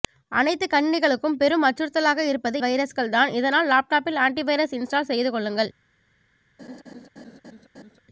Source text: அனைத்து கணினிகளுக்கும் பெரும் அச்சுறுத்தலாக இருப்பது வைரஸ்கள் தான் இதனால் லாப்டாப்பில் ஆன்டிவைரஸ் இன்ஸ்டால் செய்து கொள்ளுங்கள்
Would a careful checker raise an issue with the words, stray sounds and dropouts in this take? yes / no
yes